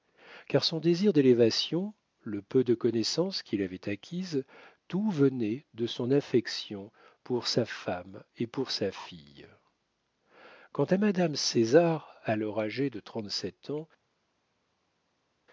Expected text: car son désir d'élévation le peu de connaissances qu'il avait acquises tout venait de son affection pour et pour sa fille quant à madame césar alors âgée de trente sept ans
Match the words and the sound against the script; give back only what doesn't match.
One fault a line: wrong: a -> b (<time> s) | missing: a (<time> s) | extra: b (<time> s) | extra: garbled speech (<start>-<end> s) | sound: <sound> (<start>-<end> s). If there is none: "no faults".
extra: sa femme (7.5 s)